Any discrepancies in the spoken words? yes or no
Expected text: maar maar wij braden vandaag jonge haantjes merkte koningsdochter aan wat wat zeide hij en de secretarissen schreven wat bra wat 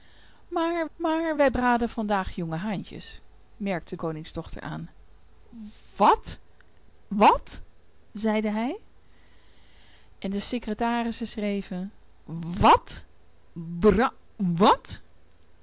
no